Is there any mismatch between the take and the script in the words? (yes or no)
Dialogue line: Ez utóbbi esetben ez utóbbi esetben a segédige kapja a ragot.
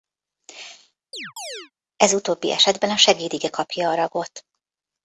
yes